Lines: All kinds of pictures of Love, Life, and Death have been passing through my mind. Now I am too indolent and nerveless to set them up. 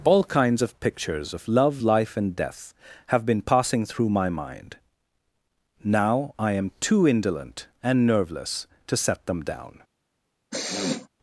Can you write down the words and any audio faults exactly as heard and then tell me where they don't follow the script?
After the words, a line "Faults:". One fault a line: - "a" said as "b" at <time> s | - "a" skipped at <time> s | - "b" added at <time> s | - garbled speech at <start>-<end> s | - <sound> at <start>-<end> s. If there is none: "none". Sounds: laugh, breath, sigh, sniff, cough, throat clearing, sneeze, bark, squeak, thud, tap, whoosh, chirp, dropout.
All kinds of pictures of Love, Life, and Death have been passing through my mind. Now I am too indolent and nerveless to set them down.
Faults:
- "up" said as "down" at 9.4 s
- sniff at 10.5-11.1 s